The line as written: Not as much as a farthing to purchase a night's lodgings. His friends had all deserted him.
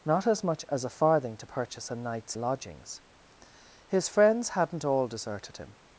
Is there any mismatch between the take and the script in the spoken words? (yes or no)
yes